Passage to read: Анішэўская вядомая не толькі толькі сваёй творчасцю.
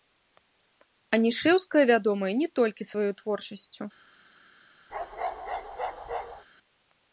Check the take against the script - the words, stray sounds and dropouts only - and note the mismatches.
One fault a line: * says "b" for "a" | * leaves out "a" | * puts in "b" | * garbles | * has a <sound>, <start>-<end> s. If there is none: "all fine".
* leaves out "толькі"
* has a bark, 4.9-6.5 s